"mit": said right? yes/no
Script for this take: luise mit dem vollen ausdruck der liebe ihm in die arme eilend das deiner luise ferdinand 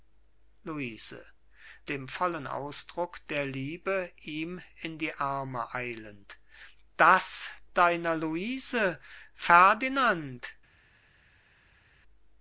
no